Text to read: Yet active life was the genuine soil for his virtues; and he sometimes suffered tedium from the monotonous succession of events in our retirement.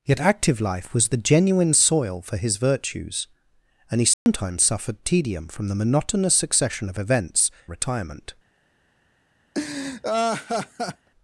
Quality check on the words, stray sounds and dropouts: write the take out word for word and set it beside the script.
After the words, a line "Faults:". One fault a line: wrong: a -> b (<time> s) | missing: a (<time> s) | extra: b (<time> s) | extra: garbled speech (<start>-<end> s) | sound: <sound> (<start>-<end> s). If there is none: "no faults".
Yet active life was the genuine soil for his virtues; and he sometimes suffered tedium from the monotonous succession of events retirement.
Faults:
sound: dropout (4.1-4.3 s)
missing: in our (7.5 s)
sound: laugh (9.5-11.1 s)